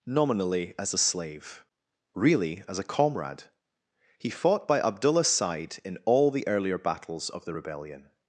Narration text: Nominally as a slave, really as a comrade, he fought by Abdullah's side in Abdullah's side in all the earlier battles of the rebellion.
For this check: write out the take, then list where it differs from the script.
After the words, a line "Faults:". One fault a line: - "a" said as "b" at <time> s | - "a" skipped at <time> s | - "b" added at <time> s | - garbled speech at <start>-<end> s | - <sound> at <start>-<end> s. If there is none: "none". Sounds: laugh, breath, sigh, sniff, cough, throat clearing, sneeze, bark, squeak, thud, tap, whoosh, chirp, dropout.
Nominally as a slave, really as a comrade, he fought by Abdullah's side in all the earlier battles of the rebellion.
Faults:
- "Abdullah's side in" skipped at 6.0 s